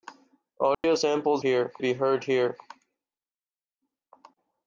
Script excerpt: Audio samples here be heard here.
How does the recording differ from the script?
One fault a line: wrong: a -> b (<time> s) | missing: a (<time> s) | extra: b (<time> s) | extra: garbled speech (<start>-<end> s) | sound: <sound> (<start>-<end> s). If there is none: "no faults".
sound: dropout (0.7-0.8 s)